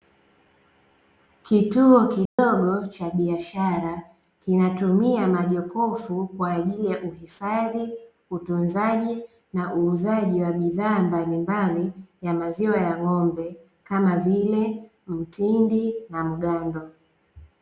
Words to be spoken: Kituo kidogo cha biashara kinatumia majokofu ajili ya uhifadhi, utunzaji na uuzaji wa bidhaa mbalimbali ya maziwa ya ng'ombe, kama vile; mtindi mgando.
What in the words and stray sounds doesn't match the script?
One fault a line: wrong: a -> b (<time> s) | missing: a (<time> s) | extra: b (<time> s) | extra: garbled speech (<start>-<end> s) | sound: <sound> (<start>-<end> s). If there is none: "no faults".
sound: dropout (2.3-2.4 s)
extra: kwa (6.3 s)
extra: na (16.1 s)